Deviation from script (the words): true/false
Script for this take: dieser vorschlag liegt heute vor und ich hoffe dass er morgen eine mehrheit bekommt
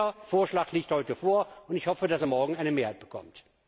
false